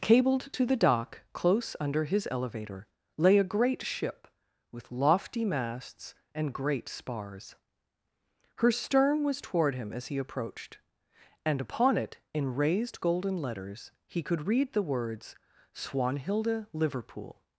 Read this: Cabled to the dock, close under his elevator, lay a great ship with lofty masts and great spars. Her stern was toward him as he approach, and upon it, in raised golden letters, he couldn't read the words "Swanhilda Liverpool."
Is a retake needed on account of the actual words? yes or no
yes